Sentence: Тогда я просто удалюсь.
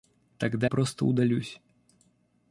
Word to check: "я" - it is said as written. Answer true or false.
false